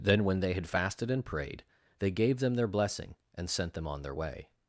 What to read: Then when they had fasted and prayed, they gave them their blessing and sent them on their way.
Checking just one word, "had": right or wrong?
right